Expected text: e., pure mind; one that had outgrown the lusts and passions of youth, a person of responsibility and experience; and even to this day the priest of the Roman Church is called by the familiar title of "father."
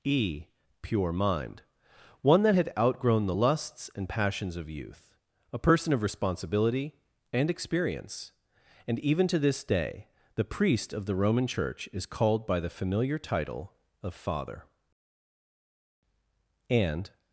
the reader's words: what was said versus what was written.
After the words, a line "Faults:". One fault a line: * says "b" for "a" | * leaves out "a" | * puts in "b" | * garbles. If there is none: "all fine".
e., pure mind; one that had outgrown the lusts and passions of youth, a person of responsibility and experience; and even to this day the priest of the Roman Church is called by the familiar title of "father." And
Faults:
* puts in "And"